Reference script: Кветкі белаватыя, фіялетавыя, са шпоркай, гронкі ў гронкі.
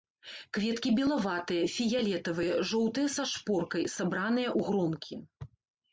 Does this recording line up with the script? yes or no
no